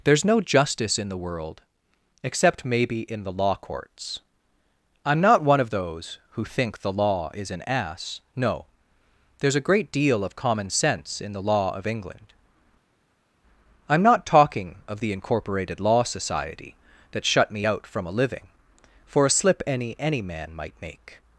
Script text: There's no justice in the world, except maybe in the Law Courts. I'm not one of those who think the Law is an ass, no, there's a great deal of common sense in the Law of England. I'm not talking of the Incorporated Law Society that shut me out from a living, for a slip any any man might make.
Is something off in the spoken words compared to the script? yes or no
no